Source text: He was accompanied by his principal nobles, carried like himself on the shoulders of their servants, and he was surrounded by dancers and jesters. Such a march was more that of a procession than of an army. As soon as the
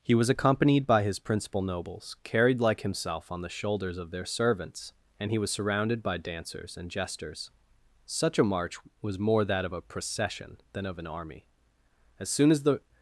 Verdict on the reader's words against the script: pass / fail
pass